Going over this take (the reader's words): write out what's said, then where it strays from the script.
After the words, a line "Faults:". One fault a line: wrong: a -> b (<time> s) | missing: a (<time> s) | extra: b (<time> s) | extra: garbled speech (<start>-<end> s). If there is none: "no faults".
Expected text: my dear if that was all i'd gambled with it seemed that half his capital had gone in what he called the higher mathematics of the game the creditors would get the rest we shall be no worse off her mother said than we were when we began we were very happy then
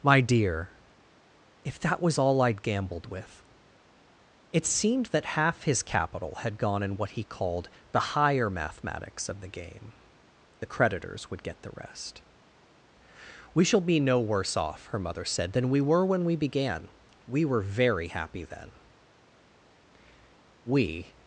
my dear if that was all i'd gambled with it seemed that half his capital had gone in what he called the higher mathematics of the game the creditors would get the rest we shall be no worse off her mother said than we were when we began we were very happy then we
Faults:
extra: we (20.6 s)